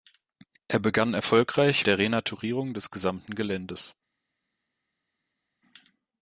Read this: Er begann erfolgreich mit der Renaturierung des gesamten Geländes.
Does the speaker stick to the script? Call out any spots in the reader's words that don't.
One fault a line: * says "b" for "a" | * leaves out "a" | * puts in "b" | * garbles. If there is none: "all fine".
* leaves out "mit"